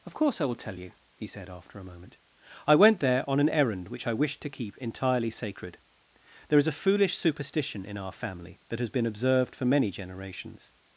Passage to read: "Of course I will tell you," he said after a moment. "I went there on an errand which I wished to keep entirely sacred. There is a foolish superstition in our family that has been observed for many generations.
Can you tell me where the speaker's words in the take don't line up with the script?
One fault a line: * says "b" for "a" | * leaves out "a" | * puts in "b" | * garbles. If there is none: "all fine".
all fine